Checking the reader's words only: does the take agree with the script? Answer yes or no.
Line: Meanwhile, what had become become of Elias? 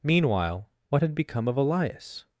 no